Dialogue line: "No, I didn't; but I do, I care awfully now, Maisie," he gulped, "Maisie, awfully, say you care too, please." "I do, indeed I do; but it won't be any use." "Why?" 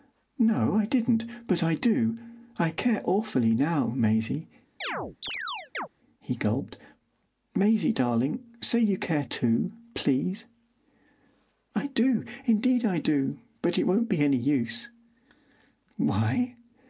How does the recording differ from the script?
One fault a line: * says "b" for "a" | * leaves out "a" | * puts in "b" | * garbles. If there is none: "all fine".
* says "darling" for "awfully"